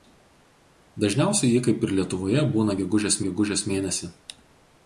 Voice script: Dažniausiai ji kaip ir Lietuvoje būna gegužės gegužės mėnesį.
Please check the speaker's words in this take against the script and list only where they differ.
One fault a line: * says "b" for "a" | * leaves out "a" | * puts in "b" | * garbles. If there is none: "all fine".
all fine